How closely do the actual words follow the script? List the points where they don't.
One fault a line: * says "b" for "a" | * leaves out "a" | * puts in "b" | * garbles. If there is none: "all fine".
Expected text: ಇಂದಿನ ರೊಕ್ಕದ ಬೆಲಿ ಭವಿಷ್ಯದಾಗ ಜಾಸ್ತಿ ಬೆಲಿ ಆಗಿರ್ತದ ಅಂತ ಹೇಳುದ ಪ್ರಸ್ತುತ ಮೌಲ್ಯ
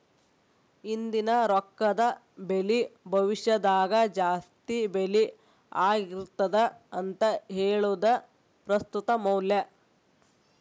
all fine